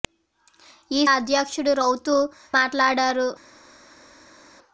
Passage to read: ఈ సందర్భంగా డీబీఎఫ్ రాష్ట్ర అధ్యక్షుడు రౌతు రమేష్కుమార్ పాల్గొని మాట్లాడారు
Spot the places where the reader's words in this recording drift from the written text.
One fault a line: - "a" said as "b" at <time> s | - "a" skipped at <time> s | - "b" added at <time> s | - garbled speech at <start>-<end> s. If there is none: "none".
- "సందర్భంగా డీబీఎఫ్ రాష్ట్ర" skipped at 1.0 s
- "రమేష్కుమార్ పాల్గొని" skipped at 2.2 s